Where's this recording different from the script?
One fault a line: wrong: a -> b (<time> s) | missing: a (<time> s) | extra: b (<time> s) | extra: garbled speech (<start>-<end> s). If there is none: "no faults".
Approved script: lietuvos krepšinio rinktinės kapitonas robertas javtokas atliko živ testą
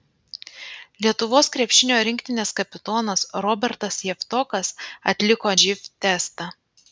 no faults